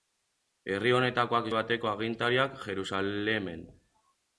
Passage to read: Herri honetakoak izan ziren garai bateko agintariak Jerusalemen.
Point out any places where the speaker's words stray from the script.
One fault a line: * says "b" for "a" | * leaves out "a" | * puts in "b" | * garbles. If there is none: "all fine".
* leaves out "izan ziren garai"